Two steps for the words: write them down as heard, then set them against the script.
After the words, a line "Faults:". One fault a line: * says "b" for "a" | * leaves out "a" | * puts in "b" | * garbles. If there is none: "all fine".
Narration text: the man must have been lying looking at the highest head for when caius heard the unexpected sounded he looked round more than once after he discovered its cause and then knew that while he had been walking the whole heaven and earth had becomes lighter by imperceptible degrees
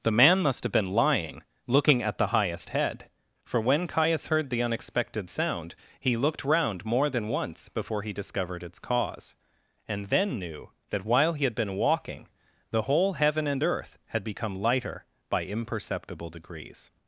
the man must have been lying looking at the highest head for when caius heard the unexpected sound he looked round more than once before he discovered its cause and then knew that while he had been walking the whole heaven and earth had become lighter by imperceptible degrees
Faults:
* says "sound" for "sounded"
* says "before" for "after"
* says "become" for "becomes"